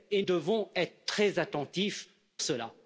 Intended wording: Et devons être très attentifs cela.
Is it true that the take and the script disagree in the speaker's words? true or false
false